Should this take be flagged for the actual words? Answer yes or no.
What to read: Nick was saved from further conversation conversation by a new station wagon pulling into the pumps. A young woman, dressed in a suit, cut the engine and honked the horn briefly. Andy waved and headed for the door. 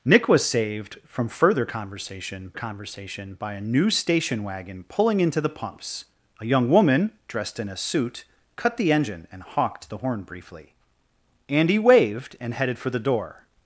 no